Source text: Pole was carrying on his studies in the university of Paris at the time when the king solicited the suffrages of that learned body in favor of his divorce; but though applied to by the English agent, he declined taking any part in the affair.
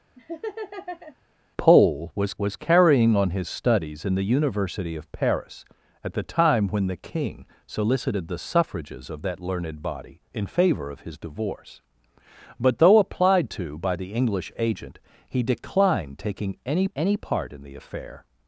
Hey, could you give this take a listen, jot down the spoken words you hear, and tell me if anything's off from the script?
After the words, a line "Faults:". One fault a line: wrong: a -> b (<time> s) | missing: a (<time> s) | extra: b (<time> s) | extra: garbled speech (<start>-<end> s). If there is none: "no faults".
Pole was was carrying on his studies in the university of Paris at the time when the king solicited the suffrages of that learned body in favor of his divorce; but though applied to by the English agent, he declined taking any any part in the affair.
Faults:
extra: was (2.4 s)
extra: any (16.9 s)